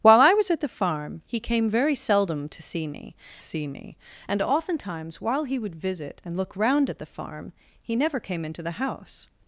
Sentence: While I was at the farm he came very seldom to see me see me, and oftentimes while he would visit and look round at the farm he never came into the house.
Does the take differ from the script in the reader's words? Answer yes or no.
no